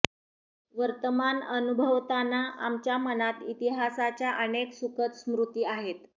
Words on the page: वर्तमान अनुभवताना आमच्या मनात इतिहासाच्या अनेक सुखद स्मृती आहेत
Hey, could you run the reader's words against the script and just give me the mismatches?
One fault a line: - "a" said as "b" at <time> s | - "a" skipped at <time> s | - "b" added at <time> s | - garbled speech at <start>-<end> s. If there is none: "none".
none